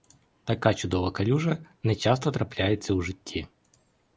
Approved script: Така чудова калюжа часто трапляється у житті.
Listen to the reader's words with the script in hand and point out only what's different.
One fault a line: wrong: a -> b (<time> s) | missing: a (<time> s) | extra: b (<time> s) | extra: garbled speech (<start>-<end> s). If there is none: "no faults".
extra: не (1.8 s)